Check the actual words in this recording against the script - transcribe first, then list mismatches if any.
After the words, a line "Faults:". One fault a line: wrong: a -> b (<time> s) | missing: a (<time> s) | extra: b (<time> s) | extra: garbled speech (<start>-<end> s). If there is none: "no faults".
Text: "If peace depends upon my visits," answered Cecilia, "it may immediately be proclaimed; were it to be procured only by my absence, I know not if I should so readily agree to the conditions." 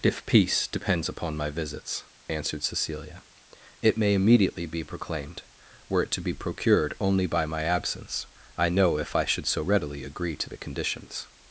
"If peace depends upon my visits," answered Cecilia, "it may immediately be proclaimed; were it to be procured only by my absence, I know if I should so readily agree to the conditions."
Faults:
missing: not (9.0 s)